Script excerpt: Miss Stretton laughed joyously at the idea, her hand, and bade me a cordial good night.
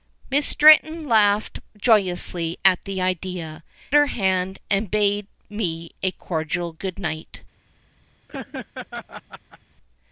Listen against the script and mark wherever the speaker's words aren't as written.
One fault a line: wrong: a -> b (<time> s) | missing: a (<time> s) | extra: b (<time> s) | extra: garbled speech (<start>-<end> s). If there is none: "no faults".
no faults